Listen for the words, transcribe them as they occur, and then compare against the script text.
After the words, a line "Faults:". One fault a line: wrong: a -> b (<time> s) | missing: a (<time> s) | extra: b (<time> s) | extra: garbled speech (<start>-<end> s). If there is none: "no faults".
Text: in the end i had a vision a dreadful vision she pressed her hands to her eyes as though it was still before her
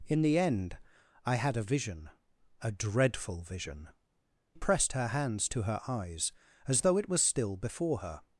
in the end i had a vision a dreadful vision pressed her hands to her eyes as though it was still before her
Faults:
missing: she (3.9 s)